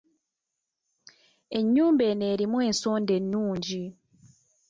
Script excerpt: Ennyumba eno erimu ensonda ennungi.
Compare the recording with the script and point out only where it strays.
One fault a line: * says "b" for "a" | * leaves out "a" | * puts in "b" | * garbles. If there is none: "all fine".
all fine